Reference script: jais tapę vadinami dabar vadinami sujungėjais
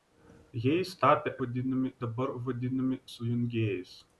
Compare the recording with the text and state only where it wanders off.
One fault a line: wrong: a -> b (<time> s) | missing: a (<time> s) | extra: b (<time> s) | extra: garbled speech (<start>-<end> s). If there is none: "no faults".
no faults